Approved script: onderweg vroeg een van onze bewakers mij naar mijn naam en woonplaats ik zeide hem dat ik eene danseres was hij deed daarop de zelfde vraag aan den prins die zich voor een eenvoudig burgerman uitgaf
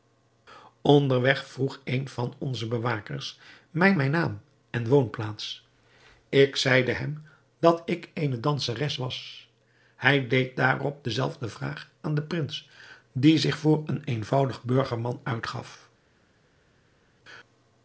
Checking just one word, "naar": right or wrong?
wrong